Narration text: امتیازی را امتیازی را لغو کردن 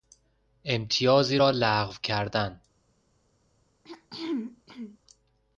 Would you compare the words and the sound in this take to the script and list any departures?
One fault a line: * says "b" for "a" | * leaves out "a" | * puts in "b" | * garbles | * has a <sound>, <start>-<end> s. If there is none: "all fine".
* leaves out "امتیازی را"
* has a throat clearing, 3.8-5.0 s